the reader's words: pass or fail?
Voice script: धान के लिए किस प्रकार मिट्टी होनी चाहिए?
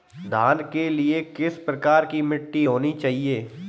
fail